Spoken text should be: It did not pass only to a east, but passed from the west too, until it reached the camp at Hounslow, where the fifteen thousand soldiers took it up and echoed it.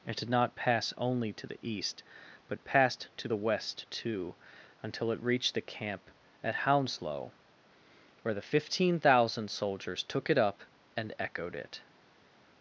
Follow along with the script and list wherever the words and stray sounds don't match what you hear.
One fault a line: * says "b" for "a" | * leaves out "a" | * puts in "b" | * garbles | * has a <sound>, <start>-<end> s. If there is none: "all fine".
* says "the" for "a"
* says "to" for "from"